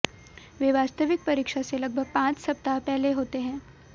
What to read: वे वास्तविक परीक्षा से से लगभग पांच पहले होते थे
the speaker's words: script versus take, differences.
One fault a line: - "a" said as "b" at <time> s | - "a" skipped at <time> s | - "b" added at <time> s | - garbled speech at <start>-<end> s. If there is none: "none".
- "से" skipped at 1.8 s
- "सप्ताह" added at 2.4 s
- "थे" said as "हैं" at 3.4 s